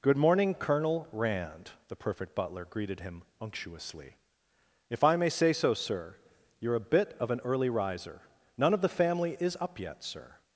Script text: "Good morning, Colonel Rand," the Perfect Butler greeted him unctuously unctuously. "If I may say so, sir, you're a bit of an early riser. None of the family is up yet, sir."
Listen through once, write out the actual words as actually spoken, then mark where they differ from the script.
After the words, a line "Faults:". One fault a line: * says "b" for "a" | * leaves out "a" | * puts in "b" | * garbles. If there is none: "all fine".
"Good morning, Colonel Rand," the Perfect Butler greeted him unctuously. "If I may say so, sir, you're a bit of an early riser. None of the family is up yet, sir."
Faults:
* leaves out "unctuously"